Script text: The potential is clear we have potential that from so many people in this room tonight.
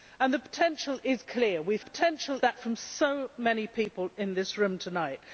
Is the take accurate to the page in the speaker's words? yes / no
yes